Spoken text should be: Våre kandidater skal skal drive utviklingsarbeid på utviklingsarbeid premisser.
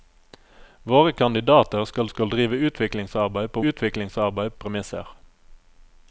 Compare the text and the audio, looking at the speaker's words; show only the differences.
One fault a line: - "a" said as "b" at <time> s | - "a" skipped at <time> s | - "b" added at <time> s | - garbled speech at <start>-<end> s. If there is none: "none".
none